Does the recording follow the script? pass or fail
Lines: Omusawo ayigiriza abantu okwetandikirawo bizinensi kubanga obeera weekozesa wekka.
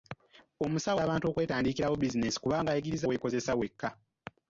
fail